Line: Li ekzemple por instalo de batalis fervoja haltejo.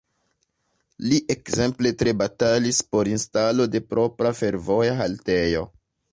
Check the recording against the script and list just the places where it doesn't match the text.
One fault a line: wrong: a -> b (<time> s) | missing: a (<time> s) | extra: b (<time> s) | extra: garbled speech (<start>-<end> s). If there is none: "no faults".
extra: tre batalis (2.0 s)
wrong: batalis -> propra (4.0 s)